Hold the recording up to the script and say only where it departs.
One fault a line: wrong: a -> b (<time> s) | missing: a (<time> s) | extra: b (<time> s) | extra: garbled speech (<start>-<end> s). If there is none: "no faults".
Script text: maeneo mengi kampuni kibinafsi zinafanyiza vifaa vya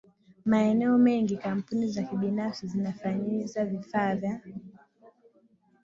extra: za (1.9 s)